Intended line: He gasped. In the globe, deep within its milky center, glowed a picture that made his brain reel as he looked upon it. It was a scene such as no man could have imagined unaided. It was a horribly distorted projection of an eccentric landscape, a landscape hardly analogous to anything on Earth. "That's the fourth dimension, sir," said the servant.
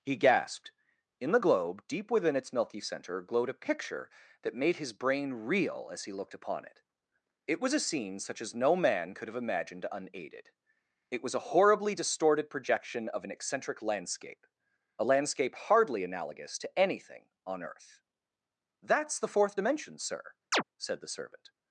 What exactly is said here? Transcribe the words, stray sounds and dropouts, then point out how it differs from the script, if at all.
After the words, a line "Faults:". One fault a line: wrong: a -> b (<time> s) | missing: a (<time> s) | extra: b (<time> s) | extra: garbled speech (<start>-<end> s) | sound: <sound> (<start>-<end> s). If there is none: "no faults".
He gasped. In the globe, deep within its milky center, glowed a picture that made his brain reel as he looked upon it. It was a scene such as no man could have imagined unaided. It was a horribly distorted projection of an eccentric landscape, a landscape hardly analogous to anything on Earth. "That's the fourth dimension, sir," said the servant.
Faults:
sound: chirp (20.5-20.6 s)